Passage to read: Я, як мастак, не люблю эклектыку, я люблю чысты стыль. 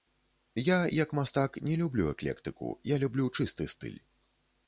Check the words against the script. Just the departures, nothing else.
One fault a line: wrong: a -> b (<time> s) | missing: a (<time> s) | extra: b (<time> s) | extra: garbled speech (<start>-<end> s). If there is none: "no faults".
no faults